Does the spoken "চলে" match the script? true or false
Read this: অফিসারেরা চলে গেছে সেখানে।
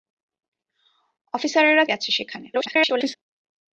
false